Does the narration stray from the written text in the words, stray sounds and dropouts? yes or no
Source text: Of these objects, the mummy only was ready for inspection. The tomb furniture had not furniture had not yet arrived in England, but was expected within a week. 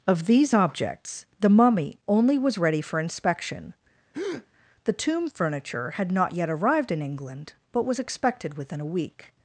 yes